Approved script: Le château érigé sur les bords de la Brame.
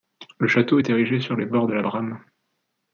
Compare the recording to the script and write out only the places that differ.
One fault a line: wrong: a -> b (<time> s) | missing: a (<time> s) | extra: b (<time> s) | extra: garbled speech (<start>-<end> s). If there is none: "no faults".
extra: est (0.8 s)